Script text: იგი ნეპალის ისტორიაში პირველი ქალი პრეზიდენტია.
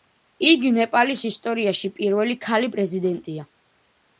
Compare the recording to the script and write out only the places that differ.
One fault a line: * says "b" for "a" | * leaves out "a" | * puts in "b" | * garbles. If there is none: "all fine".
all fine